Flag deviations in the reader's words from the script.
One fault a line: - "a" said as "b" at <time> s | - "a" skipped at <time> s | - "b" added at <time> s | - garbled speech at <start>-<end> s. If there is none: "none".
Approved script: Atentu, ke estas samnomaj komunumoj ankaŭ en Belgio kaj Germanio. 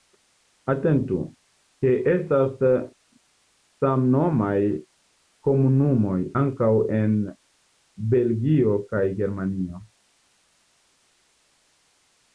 none